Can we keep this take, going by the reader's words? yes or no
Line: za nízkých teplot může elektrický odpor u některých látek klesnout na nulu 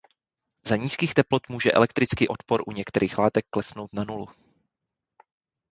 yes